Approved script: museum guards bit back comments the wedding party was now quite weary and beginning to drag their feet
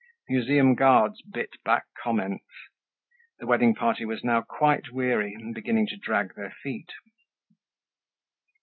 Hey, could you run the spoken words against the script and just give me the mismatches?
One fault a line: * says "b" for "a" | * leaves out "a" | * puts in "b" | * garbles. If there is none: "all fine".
all fine